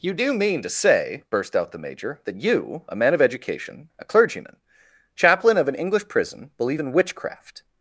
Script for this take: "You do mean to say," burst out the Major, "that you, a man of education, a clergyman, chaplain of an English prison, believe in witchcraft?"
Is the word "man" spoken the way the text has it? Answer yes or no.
yes